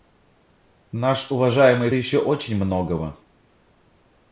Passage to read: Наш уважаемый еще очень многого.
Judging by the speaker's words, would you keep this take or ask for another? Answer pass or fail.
pass